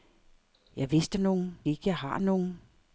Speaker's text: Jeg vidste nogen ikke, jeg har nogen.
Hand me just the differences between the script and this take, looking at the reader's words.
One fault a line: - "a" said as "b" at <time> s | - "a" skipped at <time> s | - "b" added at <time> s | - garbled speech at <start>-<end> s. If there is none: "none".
none